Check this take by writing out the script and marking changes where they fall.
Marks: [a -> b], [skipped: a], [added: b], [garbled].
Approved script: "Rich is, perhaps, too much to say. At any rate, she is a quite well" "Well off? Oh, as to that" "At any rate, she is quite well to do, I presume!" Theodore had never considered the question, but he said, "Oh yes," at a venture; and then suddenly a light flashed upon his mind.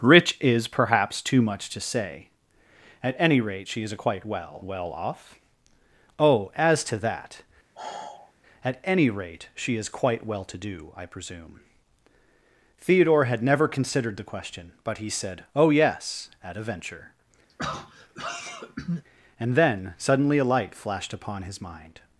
"Rich is, perhaps, too much to say. At any rate, she is [skipped: a] quite well" "Well off? Oh, as to that" "At any rate, she is quite well to do, I presume!" Theodore had never considered the question, but he said, "Oh yes," at a venture; and then suddenly a light flashed upon his mind.